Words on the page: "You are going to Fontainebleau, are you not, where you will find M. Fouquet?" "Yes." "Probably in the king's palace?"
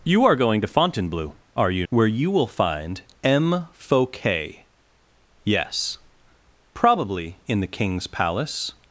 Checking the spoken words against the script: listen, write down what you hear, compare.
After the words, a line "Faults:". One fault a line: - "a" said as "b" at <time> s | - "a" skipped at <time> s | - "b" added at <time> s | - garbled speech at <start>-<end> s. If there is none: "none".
"You are going to Fontainebleau, are you where you will find M. Fouquet?" "Yes." "Probably in the king's palace?"
Faults:
- "not" skipped at 1.9 s